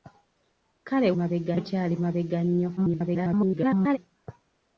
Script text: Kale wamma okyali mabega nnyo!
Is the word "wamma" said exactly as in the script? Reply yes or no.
no